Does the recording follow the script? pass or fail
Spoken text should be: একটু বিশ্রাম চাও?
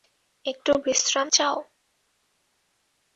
pass